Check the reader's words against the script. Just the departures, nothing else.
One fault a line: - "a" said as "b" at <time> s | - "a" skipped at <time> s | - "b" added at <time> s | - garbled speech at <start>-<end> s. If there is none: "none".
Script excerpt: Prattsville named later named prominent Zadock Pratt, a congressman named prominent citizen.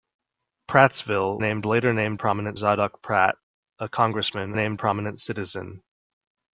none